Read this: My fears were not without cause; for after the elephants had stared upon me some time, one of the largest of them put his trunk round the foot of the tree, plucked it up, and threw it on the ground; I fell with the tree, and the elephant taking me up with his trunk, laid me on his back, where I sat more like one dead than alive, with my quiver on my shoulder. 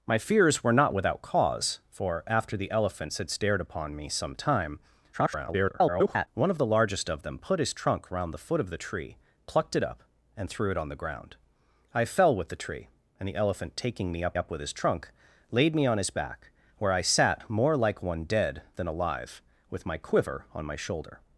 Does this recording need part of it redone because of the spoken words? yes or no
yes